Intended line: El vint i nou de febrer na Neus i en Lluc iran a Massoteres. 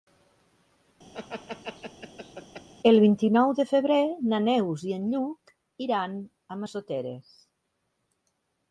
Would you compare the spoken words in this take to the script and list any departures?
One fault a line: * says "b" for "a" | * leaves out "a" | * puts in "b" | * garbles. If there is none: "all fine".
all fine